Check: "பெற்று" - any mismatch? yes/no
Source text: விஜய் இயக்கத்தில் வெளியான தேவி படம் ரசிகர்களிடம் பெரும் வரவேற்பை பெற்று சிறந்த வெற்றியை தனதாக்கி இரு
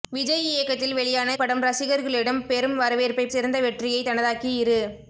yes